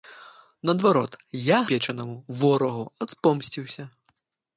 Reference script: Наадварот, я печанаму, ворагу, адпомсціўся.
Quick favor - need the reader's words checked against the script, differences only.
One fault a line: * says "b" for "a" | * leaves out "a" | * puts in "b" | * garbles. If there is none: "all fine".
all fine